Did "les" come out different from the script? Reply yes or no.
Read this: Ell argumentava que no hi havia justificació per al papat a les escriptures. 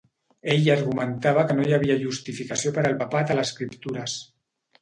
yes